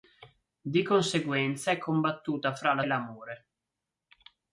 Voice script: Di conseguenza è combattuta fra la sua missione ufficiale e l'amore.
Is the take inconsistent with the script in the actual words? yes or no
yes